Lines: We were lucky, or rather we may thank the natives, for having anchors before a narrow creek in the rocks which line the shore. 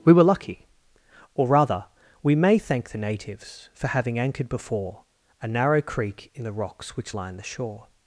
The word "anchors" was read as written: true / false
false